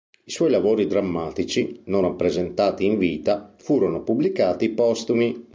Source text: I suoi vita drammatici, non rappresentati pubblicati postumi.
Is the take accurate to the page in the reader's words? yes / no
no